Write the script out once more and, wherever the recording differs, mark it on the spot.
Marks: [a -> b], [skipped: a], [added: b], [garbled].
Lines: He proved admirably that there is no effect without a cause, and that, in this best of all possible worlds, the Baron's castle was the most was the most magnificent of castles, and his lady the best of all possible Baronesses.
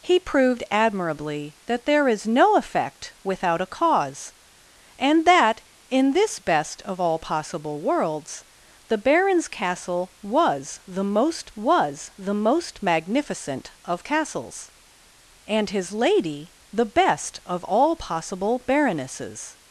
He proved admirably that there is no effect without a cause, and that, in this best of all possible worlds, the Baron's castle was the most was the most magnificent of castles, and his lady the best of all possible Baronesses.